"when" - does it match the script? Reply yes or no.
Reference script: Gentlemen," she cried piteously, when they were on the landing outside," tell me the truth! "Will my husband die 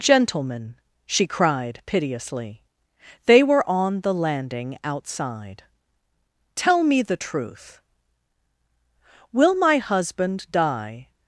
no